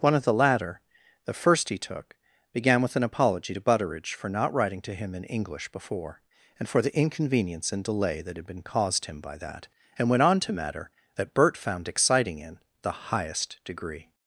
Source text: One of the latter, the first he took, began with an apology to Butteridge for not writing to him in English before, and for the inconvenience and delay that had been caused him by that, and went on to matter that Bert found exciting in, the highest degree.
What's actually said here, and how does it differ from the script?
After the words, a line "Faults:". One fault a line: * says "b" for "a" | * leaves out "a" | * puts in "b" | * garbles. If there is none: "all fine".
One of the latter, the first he took, began with an apology to Butteridge for not writing to him in English before, and for the inconvenience and delay that had been caused him by that, and went on to matter that Bert found exciting in, the highest degree.
Faults:
all fine